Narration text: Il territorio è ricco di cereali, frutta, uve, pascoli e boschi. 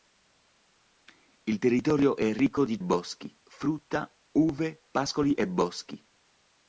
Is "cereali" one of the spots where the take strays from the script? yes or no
yes